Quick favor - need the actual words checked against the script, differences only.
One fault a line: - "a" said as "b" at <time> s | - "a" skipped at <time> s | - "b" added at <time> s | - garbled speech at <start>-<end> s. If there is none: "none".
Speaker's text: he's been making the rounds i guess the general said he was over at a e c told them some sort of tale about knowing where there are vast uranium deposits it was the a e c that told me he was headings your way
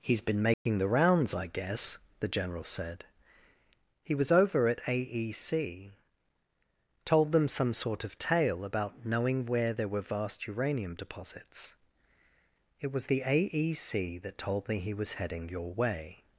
- "are" said as "were" at 9.9 s
- "headings" said as "heading" at 15.1 s